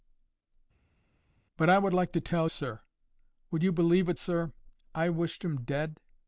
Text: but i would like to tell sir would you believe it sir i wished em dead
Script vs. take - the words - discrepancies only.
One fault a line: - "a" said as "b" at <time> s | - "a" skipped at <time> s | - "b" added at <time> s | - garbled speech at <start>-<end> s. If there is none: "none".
none